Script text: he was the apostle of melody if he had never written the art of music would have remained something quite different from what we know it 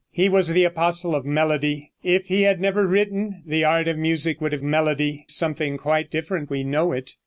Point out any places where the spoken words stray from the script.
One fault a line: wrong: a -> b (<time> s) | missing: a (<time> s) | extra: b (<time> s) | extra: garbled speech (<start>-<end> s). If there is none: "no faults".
wrong: remained -> melody (4.6 s)
missing: from what (6.5 s)